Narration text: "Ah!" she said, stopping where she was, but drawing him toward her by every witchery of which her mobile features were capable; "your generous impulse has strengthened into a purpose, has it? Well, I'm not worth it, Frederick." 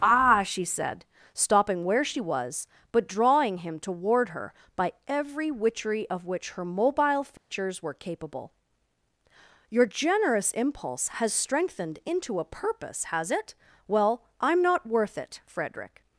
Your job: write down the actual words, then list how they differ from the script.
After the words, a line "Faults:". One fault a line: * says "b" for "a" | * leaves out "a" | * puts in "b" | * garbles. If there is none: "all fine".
"Ah!" she said, stopping where she was, but drawing him toward her by every witchery of which her mobile features were capable; "your generous impulse has strengthened into a purpose, has it? Well, I'm not worth it, Frederick."
Faults:
all fine